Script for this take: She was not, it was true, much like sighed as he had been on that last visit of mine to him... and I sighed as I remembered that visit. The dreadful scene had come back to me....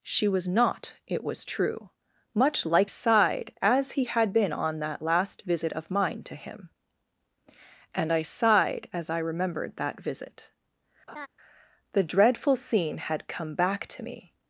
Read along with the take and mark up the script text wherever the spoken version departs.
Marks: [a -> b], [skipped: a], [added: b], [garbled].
She was not, it was true, much like sighed as he had been on that last visit of mine to him... and I sighed as I remembered that visit. The dreadful scene had come back to me....